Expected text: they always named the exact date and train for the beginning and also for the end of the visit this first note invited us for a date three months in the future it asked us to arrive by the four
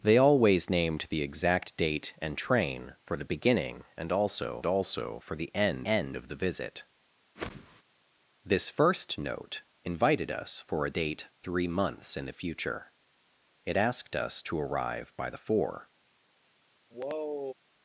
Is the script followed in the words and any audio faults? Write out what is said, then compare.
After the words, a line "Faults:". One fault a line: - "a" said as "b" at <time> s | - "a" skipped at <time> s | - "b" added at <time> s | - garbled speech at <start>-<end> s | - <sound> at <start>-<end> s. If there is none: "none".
they always named the exact date and train for the beginning and also also for the end end of the visit this first note invited us for a date three months in the future it asked us to arrive by the four
Faults:
- "also" added at 4.7 s
- "end" added at 5.8 s
- whoosh at 7.4-7.8 s
- sigh at 16.9-17.5 s